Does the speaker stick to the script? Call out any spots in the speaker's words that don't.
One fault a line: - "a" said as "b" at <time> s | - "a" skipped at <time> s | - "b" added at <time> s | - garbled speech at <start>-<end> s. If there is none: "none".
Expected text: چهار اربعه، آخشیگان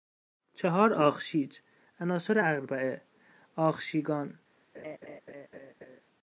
- "آخشیج عناصر" added at 0.9 s